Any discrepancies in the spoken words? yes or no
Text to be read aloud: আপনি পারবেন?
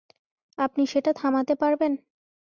yes